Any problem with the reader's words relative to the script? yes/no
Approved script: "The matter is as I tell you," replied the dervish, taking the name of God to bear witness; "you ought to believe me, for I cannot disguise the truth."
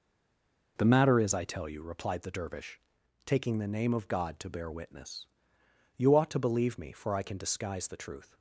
yes